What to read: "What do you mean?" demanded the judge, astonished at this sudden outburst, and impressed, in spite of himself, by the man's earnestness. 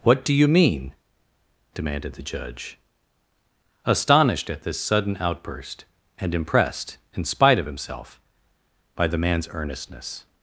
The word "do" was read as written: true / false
true